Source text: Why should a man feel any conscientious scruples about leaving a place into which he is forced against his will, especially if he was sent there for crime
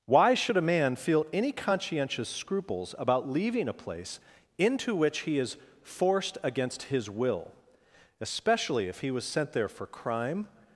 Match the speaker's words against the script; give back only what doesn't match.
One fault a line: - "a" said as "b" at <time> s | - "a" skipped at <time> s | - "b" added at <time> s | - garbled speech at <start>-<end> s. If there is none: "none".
none